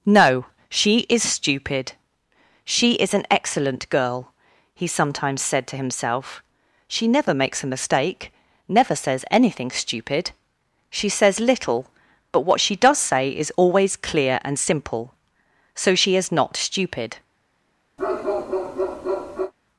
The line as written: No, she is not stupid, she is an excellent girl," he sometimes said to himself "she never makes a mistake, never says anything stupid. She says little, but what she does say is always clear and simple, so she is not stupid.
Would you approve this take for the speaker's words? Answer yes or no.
no